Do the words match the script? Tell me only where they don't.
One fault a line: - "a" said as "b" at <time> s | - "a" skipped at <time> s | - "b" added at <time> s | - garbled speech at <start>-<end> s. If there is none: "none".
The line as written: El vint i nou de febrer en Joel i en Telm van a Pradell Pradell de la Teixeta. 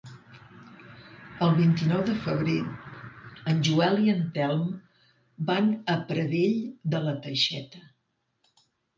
- "Pradell" skipped at 6.5 s